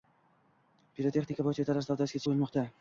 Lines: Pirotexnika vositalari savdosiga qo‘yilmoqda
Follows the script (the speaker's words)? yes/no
yes